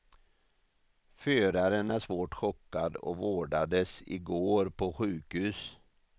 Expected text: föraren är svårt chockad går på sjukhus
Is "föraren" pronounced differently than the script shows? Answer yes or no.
no